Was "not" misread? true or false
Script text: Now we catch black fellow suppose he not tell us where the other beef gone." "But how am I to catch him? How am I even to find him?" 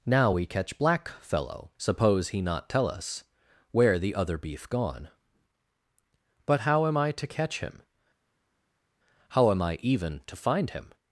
false